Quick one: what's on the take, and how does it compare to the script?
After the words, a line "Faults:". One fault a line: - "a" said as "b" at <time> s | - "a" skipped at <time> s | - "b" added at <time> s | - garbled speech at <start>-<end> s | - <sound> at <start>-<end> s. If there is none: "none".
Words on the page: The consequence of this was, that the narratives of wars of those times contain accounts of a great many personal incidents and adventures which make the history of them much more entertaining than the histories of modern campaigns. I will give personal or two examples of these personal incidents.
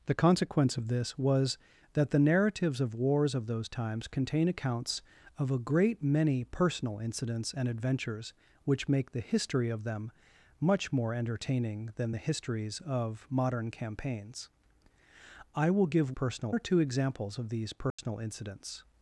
The consequence of this was, that the narratives of wars of those times contain accounts of a great many personal incidents and adventures which make the history of them much more entertaining than the histories of modern campaigns. I will give personal or two examples of these personal incidents.
Faults:
- dropout at 17.9-18.0 s